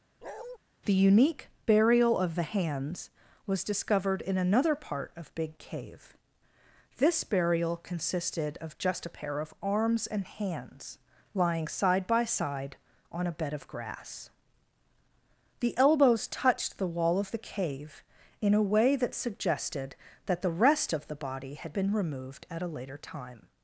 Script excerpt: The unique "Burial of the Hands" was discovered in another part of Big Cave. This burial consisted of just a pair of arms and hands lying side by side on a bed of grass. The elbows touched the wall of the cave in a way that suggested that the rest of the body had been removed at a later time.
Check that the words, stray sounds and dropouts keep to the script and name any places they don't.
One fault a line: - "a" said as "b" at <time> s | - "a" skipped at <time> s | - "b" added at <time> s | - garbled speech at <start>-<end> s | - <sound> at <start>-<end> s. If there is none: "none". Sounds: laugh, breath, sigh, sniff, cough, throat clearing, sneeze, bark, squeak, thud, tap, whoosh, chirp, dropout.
- bark at 0.2-0.6 s